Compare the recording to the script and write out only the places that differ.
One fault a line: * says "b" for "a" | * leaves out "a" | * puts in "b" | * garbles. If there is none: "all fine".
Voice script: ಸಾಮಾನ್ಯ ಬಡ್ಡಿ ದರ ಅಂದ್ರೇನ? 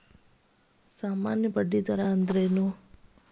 all fine